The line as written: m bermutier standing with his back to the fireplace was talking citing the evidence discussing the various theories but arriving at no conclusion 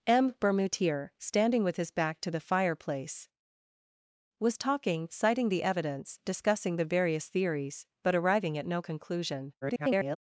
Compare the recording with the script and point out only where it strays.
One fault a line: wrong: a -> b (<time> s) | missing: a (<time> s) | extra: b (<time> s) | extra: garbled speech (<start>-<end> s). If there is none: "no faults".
extra: garbled speech (9.6-10.2 s)